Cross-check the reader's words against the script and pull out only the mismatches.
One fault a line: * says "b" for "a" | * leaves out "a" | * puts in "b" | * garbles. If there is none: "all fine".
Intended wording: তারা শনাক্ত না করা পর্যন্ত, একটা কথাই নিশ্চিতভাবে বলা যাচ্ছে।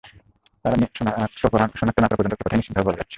all fine